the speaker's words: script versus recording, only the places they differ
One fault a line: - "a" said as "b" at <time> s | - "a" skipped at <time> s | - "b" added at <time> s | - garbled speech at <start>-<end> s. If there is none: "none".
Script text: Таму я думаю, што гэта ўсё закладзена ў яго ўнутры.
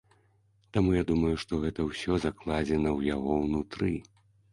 none